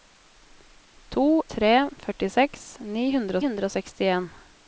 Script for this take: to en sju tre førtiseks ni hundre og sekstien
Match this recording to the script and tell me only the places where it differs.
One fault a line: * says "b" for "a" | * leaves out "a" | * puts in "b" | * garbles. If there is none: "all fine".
* leaves out "en sju"
* puts in "hundre"